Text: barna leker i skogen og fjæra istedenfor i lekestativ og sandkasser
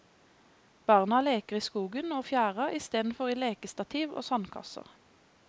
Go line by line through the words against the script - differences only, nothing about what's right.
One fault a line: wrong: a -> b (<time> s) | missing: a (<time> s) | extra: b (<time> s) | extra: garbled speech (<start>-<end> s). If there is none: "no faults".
no faults